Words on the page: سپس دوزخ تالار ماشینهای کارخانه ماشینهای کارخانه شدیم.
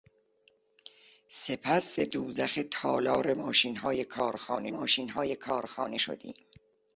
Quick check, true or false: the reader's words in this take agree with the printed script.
true